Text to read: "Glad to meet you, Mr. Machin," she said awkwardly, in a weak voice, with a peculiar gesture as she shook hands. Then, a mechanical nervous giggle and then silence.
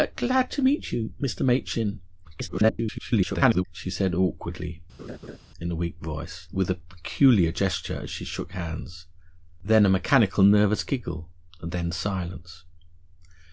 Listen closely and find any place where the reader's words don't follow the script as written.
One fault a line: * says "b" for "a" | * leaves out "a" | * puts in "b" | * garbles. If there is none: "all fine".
* garbles